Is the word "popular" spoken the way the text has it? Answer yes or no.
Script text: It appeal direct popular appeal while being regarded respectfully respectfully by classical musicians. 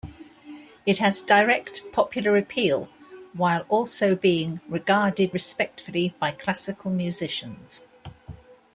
yes